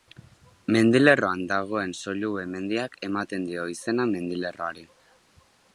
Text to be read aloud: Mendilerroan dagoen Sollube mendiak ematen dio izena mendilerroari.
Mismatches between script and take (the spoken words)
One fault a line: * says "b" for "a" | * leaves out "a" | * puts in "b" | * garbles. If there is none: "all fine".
all fine